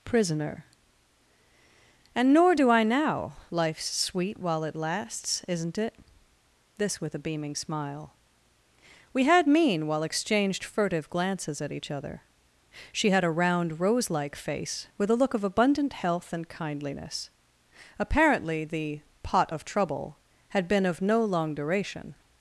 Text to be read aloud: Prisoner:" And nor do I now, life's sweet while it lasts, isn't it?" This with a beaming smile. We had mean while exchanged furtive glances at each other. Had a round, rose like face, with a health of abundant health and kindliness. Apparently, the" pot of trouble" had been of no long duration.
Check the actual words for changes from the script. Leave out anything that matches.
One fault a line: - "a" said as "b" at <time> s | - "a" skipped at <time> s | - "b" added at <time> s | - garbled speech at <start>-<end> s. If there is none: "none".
- "She" added at 12.9 s
- "health" said as "look" at 15.2 s